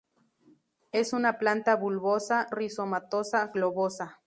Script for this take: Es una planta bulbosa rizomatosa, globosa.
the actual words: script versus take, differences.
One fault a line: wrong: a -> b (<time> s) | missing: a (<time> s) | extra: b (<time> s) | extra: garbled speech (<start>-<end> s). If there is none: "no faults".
no faults